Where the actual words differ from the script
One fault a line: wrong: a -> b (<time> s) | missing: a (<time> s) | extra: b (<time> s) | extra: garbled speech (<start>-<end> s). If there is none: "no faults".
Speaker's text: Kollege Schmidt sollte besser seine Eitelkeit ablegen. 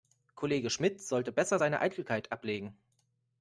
no faults